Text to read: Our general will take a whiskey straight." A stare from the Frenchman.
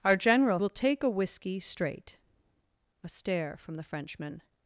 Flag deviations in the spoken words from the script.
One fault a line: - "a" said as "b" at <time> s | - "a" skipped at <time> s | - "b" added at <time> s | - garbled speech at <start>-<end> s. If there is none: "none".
none